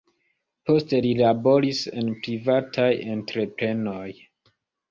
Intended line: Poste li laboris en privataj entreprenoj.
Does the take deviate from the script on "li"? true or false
false